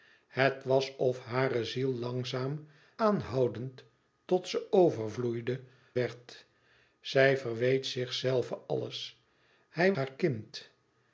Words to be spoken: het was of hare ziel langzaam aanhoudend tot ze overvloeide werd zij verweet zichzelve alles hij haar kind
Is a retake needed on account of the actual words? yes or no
no